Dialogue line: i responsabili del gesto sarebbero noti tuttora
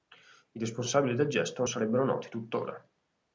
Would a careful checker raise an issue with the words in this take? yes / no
no